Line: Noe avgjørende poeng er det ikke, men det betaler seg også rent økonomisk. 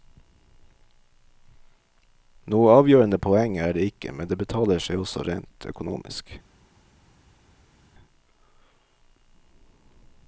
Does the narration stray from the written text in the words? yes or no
no